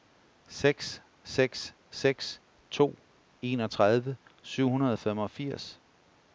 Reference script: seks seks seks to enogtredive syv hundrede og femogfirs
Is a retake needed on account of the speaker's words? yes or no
no